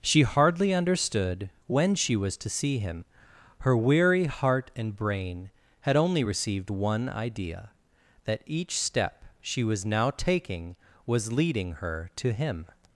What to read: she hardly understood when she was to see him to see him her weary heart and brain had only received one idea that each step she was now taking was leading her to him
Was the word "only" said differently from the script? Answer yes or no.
no